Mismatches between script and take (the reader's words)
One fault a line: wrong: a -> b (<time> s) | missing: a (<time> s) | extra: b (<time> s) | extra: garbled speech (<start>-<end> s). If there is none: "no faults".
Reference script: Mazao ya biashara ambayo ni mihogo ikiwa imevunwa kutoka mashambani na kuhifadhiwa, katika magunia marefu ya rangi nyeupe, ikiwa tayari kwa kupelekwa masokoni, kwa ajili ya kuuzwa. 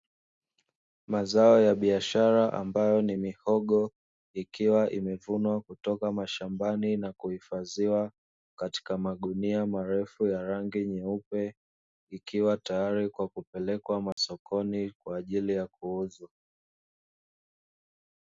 no faults